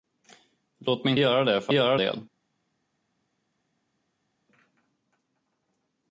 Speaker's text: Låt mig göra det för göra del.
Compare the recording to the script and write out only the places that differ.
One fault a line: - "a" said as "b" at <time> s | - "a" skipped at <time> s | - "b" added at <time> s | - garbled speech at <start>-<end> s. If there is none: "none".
none